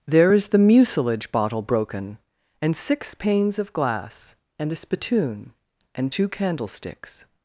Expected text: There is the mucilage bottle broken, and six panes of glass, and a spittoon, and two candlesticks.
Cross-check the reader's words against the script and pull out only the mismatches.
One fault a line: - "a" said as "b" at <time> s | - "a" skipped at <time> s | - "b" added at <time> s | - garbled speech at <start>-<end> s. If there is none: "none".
none